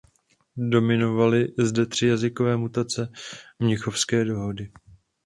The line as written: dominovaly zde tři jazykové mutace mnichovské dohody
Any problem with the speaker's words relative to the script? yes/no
no